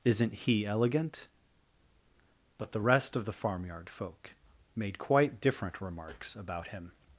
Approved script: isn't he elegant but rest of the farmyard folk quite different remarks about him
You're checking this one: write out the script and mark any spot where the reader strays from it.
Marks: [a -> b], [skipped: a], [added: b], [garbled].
isn't he elegant but [added: the] rest of the farmyard folk [added: made] quite different remarks about him